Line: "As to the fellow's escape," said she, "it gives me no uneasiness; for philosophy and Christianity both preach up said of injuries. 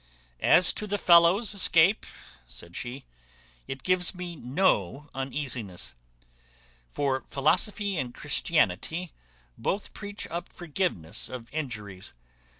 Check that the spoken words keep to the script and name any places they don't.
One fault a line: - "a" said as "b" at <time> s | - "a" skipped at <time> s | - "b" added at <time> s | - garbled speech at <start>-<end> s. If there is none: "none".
- "said" said as "forgiveness" at 10.5 s